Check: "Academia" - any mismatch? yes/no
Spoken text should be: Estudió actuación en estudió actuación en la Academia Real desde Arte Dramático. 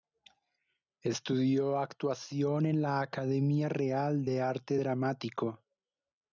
no